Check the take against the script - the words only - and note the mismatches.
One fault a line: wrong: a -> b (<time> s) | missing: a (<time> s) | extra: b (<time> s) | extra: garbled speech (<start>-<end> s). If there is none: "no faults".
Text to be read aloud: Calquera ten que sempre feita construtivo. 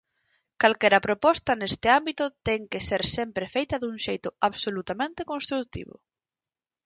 extra: proposta neste ámbito (1.1 s)
extra: ser (2.9 s)
extra: dun xeito absolutamente (3.8 s)